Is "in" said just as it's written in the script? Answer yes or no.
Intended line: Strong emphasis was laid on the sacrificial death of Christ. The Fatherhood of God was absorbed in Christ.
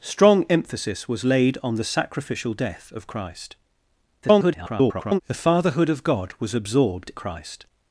no